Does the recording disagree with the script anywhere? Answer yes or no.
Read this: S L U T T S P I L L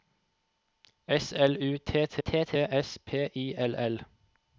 yes